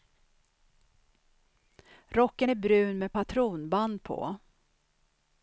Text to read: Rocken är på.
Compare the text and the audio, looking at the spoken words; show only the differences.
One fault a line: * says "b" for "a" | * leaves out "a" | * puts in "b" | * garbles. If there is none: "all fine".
* puts in "brun med patronband"